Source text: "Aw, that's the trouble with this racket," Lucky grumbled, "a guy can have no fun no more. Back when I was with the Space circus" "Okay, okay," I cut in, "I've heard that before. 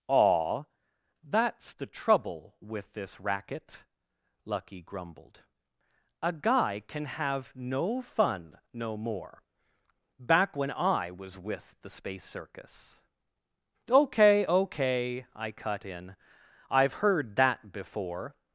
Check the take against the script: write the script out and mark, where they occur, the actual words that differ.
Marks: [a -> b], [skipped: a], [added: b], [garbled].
"Aw, that's the trouble with this racket," Lucky grumbled, "a guy can have no fun no more. Back when I was with the Space circus" "Okay, okay," I cut in, "I've heard that before.